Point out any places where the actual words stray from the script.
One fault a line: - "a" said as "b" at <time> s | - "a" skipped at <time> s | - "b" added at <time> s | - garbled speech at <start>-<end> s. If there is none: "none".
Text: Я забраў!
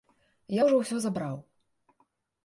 - "ўжо ўсё" added at 0.6 s